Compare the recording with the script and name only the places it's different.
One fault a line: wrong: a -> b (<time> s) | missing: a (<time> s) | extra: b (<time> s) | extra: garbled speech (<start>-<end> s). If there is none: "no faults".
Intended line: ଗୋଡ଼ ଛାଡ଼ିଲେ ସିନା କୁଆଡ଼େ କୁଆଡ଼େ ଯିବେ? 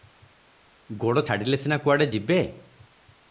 missing: କୁଆଡ଼େ (2.1 s)